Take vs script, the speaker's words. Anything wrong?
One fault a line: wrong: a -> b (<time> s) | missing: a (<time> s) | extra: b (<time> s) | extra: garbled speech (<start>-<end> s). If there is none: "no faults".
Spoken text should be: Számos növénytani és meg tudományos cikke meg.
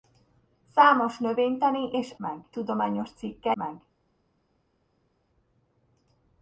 no faults